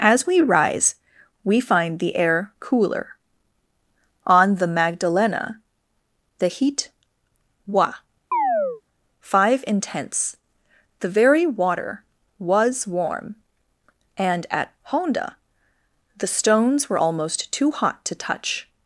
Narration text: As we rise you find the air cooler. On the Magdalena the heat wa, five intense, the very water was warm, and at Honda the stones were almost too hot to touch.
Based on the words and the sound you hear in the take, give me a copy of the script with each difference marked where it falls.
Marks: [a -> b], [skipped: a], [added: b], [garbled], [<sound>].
As we rise [you -> we] find the air cooler. On the Magdalena the heat wa, [chirp] five intense, the very water was warm, and at Honda the stones were almost too hot to touch.